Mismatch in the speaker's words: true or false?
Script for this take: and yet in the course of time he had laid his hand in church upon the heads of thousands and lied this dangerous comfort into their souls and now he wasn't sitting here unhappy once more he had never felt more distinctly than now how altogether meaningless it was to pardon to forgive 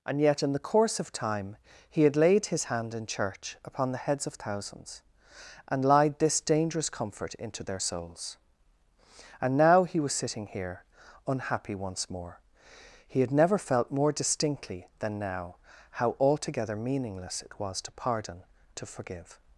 true